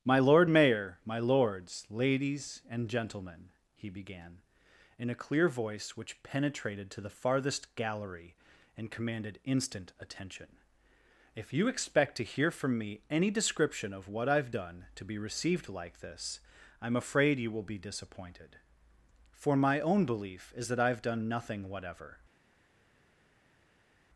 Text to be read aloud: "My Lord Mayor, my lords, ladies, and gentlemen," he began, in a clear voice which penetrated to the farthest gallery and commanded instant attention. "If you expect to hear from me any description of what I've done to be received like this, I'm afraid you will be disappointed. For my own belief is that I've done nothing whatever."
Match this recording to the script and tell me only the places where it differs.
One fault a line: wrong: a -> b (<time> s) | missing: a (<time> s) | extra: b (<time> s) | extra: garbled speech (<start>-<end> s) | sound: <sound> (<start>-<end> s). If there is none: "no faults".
no faults